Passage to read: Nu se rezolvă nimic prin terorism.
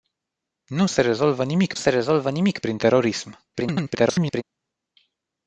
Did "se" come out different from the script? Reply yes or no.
no